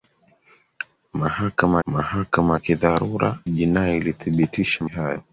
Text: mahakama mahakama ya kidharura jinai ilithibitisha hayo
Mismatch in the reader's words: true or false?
false